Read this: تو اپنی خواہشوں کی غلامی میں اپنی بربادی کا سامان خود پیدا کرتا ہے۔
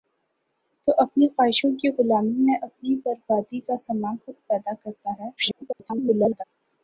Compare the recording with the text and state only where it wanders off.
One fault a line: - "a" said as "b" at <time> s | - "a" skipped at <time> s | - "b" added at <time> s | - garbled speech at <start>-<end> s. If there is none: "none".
- garbled speech at 5.4-6.4 s